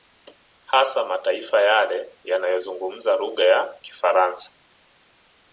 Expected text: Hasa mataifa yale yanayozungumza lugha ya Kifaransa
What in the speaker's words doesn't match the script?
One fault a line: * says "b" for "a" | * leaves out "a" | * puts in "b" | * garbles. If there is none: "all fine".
all fine